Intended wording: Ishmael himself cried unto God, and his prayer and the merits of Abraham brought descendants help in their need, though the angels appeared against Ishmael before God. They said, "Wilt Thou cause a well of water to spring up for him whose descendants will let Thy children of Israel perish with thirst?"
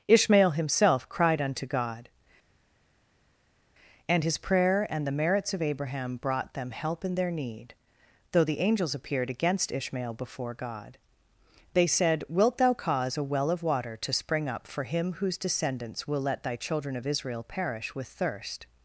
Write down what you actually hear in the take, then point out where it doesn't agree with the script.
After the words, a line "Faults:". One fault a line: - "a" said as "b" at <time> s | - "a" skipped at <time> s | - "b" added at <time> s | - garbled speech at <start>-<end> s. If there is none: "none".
Ishmael himself cried unto God, and his prayer and the merits of Abraham brought them help in their need, though the angels appeared against Ishmael before God. They said, "Wilt Thou cause a well of water to spring up for him whose descendants will let Thy children of Israel perish with thirst?"
Faults:
- "descendants" said as "them" at 6.5 s